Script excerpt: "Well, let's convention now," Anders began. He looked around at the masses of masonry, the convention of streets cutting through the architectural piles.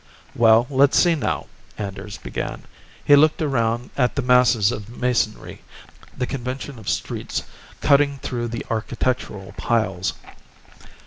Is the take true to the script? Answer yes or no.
no